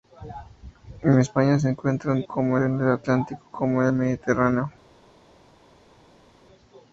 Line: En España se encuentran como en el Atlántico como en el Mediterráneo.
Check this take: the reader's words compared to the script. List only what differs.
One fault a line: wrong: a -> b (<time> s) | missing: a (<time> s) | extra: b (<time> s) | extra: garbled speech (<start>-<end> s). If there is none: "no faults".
no faults